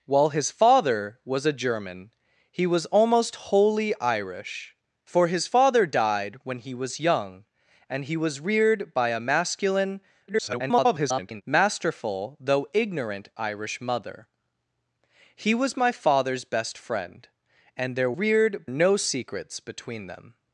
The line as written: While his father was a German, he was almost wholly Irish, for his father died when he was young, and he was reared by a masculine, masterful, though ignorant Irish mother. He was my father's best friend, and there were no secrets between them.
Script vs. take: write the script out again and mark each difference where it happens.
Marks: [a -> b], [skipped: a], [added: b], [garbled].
While his father was a German, he was almost wholly Irish, for his father died when he was young, and he was reared by a masculine, [garbled] masterful, though ignorant Irish mother. He was my father's best friend, and there [were -> reared] no secrets between them.